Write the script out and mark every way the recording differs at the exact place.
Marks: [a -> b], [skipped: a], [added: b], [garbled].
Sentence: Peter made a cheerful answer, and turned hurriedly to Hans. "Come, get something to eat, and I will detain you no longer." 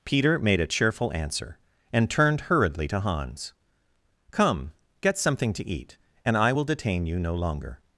Peter made a cheerful answer, and turned hurriedly to Hans. "Come, get something to eat, and I will detain you no longer."